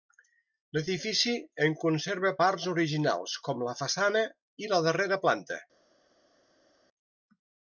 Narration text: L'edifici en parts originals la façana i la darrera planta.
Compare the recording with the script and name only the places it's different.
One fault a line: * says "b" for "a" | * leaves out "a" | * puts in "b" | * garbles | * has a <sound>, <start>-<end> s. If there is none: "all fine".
* puts in "conserva"
* puts in "com"